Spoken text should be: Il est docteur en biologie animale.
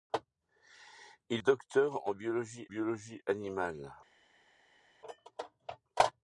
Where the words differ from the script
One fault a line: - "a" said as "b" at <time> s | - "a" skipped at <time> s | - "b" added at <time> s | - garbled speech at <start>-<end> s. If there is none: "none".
- "est" skipped at 1.4 s
- "biologie" added at 2.7 s